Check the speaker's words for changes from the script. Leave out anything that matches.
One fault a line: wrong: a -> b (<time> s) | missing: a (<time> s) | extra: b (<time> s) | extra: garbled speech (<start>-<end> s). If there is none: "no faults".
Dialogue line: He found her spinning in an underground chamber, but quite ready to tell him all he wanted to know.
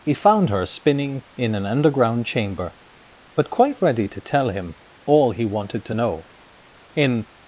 extra: In (6.9 s)